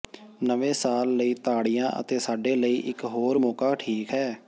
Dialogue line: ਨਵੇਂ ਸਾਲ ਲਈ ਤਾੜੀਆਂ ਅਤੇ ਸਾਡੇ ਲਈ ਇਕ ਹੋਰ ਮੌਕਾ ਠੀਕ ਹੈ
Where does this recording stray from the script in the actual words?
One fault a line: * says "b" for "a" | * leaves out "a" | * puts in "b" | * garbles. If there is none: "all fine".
all fine